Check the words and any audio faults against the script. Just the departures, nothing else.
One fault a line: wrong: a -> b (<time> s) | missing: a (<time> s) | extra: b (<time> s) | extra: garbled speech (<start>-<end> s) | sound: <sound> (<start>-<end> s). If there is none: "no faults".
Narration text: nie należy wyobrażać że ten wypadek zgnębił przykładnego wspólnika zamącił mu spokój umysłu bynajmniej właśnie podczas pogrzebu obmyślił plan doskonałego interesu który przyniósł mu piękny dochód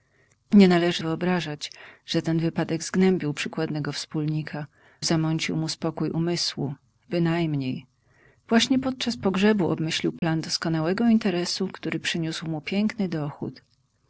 sound: dropout (10.2-10.2 s)